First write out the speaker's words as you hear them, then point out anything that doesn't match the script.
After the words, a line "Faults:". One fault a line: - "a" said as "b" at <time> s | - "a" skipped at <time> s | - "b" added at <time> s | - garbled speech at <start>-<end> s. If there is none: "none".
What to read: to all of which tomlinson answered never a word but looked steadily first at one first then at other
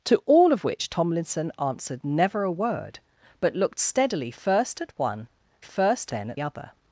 to all of which tomlinson answered never a word but looked steadily first at one first then at other
Faults:
none